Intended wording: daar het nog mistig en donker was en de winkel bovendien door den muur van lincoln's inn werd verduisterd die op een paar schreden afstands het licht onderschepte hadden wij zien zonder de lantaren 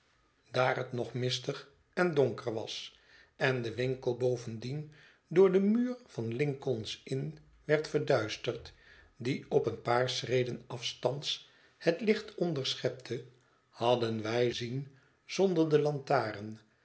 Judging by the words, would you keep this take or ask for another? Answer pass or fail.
pass